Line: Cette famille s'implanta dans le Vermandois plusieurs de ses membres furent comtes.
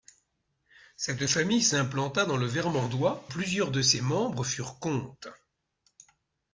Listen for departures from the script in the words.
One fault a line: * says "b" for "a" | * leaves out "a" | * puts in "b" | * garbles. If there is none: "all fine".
all fine